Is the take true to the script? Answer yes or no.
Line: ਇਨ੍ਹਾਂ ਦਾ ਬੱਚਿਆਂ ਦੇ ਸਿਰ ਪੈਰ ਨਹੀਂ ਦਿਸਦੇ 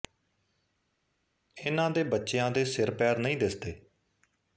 no